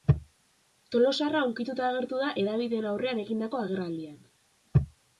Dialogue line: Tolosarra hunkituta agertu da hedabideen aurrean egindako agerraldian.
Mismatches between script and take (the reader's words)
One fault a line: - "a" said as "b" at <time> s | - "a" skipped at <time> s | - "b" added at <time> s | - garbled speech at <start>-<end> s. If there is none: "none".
none